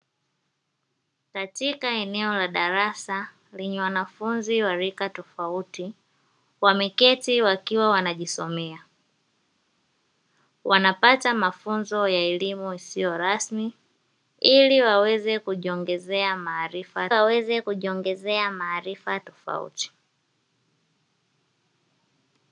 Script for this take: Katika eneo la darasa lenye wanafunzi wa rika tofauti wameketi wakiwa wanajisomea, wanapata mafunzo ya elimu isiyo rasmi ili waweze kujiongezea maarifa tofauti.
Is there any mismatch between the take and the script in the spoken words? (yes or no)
yes